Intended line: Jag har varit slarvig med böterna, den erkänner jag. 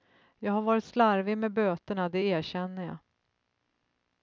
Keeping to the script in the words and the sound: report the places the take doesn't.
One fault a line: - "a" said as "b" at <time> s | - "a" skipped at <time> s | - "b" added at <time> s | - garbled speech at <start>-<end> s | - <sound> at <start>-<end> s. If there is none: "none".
- "den" said as "det" at 2.1 s